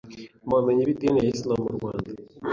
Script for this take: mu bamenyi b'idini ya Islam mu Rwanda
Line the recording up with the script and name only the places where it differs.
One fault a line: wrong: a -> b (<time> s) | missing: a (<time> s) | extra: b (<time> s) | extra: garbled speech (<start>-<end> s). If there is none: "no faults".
no faults